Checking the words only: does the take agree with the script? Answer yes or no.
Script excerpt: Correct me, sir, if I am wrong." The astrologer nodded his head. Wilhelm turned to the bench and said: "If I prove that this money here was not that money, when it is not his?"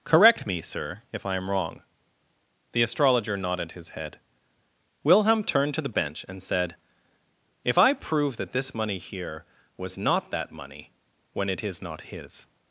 yes